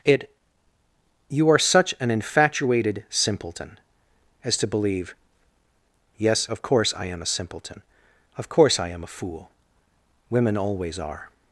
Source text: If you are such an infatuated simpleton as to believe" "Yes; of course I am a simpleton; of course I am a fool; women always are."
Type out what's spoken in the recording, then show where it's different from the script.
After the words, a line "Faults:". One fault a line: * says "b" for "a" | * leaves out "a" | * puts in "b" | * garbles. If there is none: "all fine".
It you are such an infatuated simpleton as to believe" "Yes; of course I am a simpleton; of course I am a fool; women always are."
Faults:
* says "It" for "If"